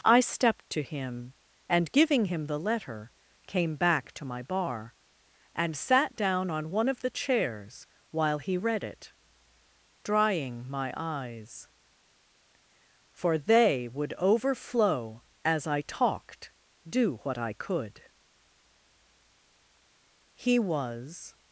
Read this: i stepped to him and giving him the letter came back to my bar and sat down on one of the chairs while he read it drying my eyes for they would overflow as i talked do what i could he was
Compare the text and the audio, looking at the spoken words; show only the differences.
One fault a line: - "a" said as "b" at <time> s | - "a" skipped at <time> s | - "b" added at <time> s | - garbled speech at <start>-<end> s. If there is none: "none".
none